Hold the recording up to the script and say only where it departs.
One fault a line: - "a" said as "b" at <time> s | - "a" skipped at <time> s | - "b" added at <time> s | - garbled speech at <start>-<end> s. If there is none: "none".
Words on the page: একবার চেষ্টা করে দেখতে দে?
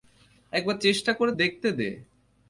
none